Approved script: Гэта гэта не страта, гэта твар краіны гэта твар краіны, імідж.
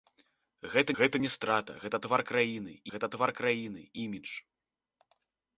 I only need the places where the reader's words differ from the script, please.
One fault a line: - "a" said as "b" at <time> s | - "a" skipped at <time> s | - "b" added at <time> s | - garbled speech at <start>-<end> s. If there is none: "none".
none